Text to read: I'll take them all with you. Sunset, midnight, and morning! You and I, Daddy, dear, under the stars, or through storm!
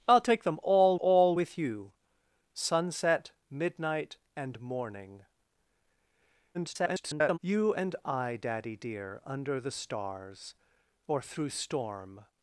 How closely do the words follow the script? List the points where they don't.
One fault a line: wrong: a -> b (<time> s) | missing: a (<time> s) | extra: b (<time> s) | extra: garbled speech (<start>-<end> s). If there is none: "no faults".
extra: all (1.0 s)
extra: garbled speech (6.5-7.4 s)